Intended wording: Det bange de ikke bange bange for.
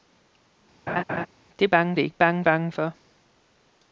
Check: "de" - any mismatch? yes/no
no